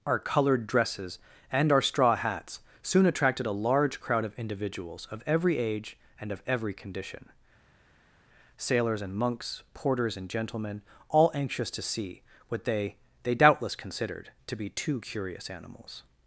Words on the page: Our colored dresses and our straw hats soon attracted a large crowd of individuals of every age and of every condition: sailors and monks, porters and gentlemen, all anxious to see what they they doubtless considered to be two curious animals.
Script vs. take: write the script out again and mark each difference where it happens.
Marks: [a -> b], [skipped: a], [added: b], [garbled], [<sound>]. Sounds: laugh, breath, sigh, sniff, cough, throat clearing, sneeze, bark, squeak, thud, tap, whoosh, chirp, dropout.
Our colored dresses and our straw hats soon attracted a large crowd of individuals of every age and of every condition: sailors and monks, porters and gentlemen, all anxious to see what they they doubtless considered to be two curious animals.